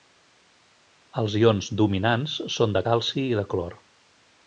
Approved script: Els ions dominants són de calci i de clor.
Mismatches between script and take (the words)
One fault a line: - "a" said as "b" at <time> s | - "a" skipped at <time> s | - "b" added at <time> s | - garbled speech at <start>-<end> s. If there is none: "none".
none